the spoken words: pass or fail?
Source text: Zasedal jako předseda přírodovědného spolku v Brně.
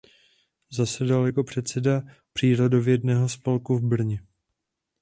pass